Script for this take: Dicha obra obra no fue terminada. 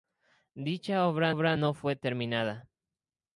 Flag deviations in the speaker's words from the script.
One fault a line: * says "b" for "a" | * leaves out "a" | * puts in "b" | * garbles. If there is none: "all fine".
all fine